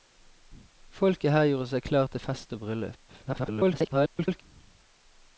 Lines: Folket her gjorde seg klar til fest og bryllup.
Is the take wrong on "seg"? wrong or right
right